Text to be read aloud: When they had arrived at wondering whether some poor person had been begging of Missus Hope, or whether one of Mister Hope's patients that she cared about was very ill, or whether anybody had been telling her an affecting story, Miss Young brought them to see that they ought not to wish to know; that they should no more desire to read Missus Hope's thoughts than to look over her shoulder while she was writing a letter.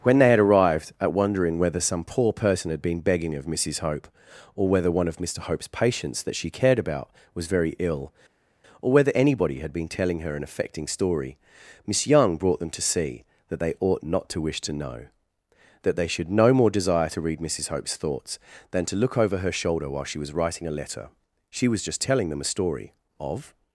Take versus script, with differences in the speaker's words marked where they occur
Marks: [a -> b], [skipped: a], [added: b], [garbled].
When they had arrived at wondering whether some poor person had been begging of Missus Hope, or whether one of Mister Hope's patients that she cared about was very ill, or whether anybody had been telling her an affecting story, Miss Young brought them to see that they ought not to wish to know; that they should no more desire to read Missus Hope's thoughts than to look over her shoulder while she was writing a letter. [added: She was just telling them a story of]